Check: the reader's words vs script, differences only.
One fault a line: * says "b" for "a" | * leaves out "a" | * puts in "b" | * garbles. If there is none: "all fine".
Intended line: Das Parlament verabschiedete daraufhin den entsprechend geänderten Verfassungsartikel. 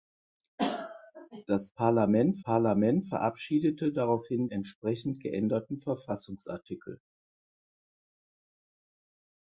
* puts in "Parlament"
* leaves out "den"